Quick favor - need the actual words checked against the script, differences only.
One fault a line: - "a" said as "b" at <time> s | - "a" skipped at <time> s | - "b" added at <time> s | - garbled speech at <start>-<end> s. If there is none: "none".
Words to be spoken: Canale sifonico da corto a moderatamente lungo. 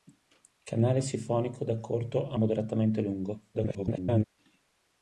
- garbled speech at 3.5-4.2 s